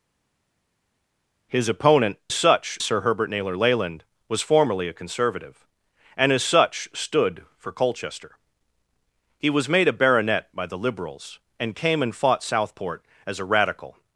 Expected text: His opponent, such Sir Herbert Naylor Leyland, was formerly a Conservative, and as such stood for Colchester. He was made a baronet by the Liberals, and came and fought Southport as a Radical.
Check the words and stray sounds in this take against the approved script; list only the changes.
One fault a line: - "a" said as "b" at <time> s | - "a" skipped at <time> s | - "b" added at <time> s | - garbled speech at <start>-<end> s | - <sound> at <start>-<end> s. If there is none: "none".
none